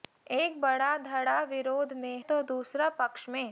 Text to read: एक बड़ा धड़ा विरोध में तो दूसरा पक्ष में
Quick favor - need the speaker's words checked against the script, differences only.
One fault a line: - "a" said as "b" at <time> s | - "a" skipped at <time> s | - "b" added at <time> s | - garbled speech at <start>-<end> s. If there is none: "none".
none